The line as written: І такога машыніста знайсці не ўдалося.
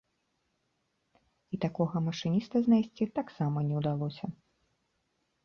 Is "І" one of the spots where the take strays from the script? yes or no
no